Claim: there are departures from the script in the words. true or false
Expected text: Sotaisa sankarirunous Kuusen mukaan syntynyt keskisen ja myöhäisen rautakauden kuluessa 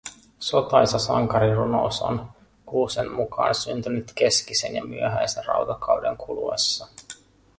true